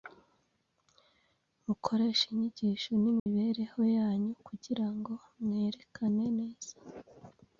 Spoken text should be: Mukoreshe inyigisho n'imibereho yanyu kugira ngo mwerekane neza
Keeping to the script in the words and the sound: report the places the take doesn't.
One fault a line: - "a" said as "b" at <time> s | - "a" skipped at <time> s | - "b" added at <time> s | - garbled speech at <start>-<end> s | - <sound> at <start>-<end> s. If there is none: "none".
- dropout at 3.2-3.3 s